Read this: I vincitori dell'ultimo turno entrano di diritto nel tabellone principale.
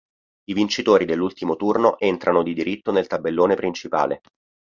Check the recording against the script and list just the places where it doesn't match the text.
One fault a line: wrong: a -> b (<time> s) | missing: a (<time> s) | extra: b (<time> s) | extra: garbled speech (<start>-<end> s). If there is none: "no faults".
no faults